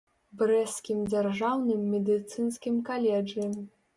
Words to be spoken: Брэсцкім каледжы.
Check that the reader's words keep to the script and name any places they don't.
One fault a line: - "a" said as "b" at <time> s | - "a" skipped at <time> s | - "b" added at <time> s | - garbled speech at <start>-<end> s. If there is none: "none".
- "дзяржаўным медыцынскім" added at 1.1 s